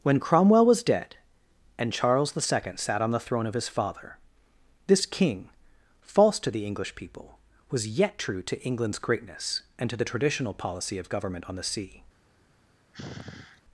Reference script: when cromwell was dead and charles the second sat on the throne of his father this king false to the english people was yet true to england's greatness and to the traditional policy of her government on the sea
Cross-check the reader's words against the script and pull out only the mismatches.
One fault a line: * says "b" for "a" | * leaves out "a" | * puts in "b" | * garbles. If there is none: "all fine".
* leaves out "her"